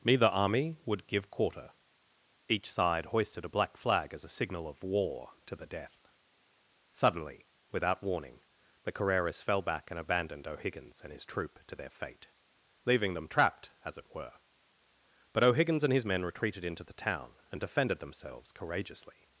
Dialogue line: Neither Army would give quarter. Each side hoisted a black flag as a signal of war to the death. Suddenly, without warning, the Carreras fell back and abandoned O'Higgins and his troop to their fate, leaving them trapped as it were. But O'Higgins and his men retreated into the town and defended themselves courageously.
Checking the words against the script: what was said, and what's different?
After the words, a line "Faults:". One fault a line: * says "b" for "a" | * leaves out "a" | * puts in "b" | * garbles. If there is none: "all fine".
Neither Army would give quarter. Each side hoisted a black flag as a signal of war to the death. Suddenly, without warning, the Carreras fell back and abandoned O'Higgins and his troop to their fate, leaving them trapped as it were. But O'Higgins and his men retreated into the town and defended themselves courageously.
Faults:
all fine